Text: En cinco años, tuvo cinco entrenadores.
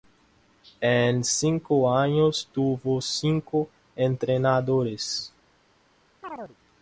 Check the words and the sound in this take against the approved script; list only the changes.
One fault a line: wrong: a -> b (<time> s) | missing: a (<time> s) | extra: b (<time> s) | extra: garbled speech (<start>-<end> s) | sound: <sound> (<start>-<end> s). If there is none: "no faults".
sound: chirp (6.2-6.6 s)